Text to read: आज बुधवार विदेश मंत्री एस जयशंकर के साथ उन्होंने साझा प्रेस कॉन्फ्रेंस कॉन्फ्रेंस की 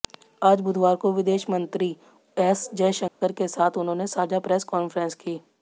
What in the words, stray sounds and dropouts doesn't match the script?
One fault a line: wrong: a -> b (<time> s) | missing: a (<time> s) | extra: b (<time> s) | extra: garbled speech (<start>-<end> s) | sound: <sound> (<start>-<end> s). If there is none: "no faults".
extra: को (0.9 s)
sound: dropout (3.1-3.2 s)
missing: कॉन्फ्रेंस (5.1 s)